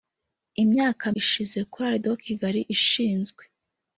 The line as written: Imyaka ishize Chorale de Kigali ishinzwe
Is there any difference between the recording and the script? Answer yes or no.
no